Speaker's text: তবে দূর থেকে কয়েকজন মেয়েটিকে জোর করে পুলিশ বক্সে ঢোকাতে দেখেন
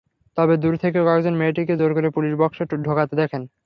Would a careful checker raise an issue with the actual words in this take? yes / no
no